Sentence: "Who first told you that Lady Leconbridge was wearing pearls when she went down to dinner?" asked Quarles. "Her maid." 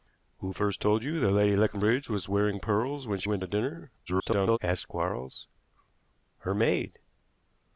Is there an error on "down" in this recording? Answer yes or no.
yes